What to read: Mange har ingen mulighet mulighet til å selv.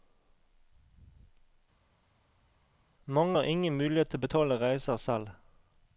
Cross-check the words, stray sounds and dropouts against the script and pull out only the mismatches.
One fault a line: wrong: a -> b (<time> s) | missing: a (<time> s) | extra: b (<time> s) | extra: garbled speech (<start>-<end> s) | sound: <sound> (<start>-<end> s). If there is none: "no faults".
missing: mulighet (4.1 s)
extra: betale reiser (4.2 s)